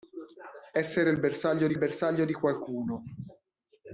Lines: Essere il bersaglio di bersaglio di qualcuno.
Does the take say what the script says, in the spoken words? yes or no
yes